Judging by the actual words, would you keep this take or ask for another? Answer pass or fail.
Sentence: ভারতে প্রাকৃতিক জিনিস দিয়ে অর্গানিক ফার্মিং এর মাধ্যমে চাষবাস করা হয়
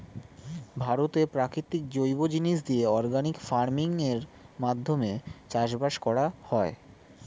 fail